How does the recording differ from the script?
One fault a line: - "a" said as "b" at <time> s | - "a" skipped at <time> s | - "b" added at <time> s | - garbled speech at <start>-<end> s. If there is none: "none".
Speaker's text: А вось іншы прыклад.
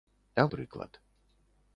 - "вось іншы" skipped at 0.5 s